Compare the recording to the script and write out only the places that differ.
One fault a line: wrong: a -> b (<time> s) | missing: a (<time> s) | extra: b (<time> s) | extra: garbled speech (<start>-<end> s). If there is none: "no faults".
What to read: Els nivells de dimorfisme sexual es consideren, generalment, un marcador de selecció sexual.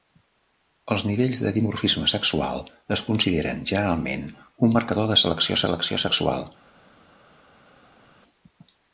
extra: selecció (5.7 s)